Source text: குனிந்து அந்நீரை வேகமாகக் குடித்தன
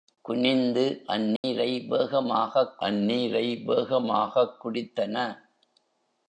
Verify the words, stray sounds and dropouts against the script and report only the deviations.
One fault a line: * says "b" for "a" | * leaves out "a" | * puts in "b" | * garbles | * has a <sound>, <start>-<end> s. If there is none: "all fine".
* has a dropout, 1.4-1.4 s
* puts in "அந்நீரை வேகமாகக்"